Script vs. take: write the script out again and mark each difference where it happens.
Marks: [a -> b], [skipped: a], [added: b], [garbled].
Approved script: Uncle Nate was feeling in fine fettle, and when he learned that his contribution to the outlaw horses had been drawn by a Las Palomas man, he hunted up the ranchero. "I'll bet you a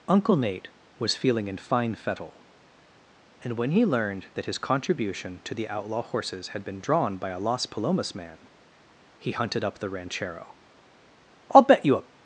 Uncle Nate was feeling in fine fettle, and when he learned that his contribution to the outlaw horses had been drawn by a Las Palomas man, he hunted up the ranchero. "I'll bet you a